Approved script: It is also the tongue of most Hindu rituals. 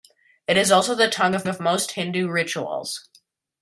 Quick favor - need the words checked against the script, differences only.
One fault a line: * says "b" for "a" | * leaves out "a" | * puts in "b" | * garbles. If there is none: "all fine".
* puts in "of"